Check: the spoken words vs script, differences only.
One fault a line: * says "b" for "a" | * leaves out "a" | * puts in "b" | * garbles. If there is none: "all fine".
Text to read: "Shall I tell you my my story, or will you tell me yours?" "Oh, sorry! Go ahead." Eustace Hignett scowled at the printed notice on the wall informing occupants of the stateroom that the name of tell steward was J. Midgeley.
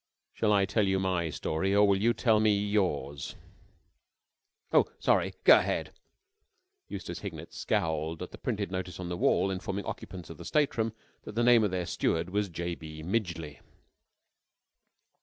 * leaves out "my"
* says "their" for "tell"
* puts in "B"